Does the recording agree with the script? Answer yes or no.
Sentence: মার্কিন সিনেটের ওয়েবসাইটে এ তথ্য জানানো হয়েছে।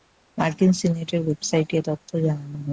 yes